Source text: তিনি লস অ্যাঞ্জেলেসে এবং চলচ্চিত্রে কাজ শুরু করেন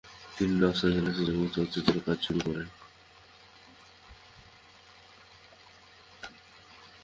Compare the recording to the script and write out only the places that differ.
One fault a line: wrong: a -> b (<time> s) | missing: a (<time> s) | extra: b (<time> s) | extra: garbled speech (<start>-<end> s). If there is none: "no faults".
no faults